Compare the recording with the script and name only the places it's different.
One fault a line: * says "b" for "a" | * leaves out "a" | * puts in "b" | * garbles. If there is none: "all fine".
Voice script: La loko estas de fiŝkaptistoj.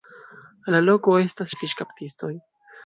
all fine